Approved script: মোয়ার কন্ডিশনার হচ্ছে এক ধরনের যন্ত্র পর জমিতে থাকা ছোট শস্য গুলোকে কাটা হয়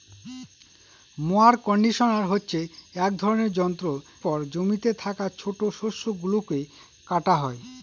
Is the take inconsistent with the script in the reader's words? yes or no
no